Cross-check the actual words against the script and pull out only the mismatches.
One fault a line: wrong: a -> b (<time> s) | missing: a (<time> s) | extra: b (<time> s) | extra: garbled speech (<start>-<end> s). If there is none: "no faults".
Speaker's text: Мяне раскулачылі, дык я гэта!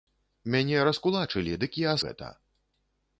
no faults